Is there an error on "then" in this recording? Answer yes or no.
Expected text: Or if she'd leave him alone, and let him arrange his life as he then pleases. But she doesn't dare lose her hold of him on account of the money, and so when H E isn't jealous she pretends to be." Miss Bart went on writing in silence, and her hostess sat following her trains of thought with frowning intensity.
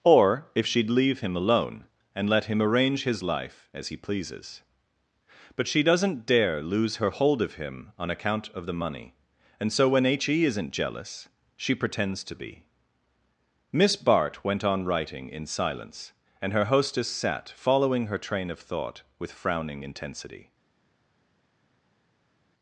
yes